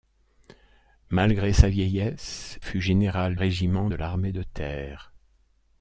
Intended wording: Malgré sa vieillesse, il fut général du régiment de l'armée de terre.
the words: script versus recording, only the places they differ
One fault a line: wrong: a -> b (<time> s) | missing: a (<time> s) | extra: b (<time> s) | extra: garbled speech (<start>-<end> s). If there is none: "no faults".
missing: il (2.6 s)
missing: du (3.4 s)